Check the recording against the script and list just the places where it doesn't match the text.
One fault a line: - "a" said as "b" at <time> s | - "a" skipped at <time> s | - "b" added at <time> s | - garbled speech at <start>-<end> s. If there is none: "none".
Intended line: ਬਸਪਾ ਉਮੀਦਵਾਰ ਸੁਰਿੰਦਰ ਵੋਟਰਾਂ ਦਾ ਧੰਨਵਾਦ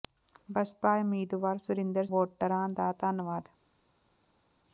none